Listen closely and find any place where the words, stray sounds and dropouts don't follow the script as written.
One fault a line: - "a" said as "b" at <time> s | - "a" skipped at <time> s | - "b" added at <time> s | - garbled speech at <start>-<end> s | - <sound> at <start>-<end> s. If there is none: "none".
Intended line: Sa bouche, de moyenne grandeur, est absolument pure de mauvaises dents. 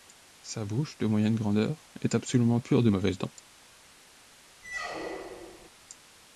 - squeak at 4.6-5.7 s